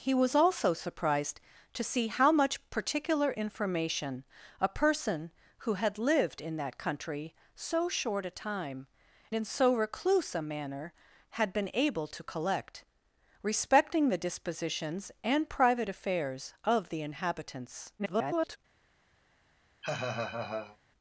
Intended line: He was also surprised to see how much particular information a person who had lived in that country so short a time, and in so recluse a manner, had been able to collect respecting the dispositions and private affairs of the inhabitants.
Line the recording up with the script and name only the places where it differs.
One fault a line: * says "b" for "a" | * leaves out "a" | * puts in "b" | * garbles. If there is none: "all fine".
* leaves out "and"
* garbles